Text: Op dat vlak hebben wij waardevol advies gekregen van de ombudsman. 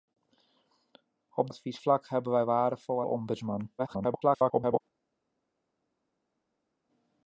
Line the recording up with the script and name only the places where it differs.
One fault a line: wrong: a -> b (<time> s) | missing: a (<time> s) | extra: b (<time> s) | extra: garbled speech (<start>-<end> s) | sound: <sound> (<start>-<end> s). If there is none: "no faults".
wrong: dat -> advies (1.5 s)
missing: advies gekregen van (3.0 s)
extra: garbled speech (3.8-4.8 s)